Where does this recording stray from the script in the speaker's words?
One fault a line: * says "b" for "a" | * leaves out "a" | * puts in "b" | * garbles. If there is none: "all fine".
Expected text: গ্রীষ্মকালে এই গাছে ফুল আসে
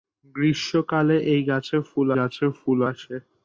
* puts in "গাছে ফুল"